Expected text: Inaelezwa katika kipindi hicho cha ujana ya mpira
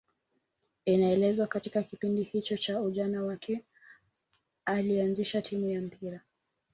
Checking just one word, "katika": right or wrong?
right